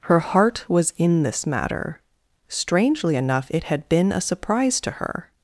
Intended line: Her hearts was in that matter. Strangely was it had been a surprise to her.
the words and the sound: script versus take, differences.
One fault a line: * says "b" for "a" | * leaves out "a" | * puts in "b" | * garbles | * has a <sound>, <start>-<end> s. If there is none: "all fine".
* says "heart" for "hearts"
* says "this" for "that"
* says "enough" for "was"